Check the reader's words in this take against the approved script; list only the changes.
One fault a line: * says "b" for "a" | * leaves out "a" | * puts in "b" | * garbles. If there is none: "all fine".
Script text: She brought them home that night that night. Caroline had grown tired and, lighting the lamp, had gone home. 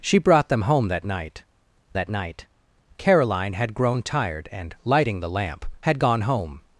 all fine